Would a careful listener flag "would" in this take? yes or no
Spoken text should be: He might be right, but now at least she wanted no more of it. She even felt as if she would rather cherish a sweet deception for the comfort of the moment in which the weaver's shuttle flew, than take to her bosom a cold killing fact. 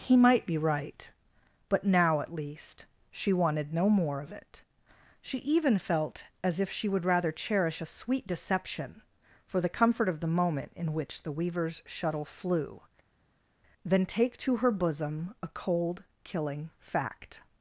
no